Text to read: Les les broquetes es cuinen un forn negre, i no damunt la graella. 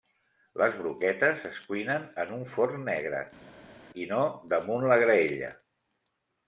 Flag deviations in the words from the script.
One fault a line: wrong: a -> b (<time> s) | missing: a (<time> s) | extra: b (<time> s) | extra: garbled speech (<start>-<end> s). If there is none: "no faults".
missing: les (0.8 s)
extra: en (2.2 s)